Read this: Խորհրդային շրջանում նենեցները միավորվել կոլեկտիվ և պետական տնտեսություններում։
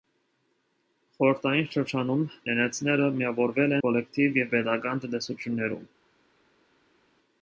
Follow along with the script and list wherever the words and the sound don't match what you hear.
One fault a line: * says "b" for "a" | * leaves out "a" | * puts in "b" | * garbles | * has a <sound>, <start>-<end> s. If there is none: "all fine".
all fine